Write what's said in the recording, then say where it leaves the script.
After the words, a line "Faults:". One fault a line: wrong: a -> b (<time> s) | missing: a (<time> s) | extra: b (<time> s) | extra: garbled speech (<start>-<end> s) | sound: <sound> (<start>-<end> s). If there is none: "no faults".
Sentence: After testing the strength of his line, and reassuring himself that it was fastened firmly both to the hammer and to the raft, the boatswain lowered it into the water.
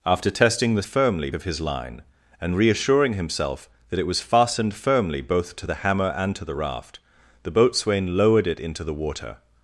After testing the firmly of his line, and reassuring himself that it was fastened firmly both to the hammer and to the raft, the boatswain lowered it into the water.
Faults:
wrong: strength -> firmly (0.8 s)